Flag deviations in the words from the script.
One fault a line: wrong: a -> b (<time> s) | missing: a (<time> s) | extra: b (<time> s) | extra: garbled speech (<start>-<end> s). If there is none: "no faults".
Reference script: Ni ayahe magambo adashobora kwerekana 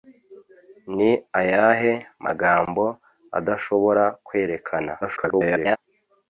extra: garbled speech (5.0-5.8 s)